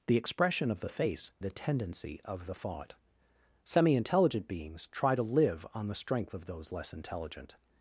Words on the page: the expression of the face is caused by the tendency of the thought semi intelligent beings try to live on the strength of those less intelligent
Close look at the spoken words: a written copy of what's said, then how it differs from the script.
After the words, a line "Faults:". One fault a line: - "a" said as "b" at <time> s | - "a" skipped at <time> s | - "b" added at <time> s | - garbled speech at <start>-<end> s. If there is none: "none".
the expression of the face the tendency of the thought semi intelligent beings try to live on the strength of those less intelligent
Faults:
- "is caused by" skipped at 1.3 s